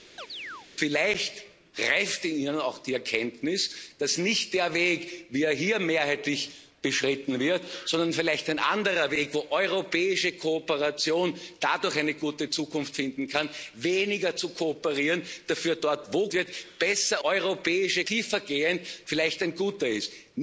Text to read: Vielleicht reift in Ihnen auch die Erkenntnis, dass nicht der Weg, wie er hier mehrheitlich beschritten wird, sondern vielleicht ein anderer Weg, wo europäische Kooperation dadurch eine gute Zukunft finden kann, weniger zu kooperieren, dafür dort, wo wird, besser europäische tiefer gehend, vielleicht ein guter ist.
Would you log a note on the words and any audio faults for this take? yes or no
yes